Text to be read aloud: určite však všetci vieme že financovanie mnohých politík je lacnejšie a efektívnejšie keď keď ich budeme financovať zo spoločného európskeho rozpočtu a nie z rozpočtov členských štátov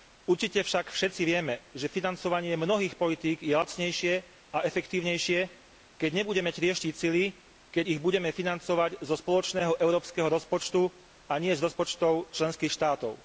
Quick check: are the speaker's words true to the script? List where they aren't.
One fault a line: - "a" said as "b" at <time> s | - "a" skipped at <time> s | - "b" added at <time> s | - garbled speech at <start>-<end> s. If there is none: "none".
- "nebudeme trieštiť sily" added at 6.1 s